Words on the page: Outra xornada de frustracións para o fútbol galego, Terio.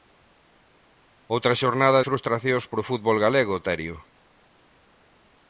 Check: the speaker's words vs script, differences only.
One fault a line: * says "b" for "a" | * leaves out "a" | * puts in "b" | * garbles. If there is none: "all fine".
* leaves out "de"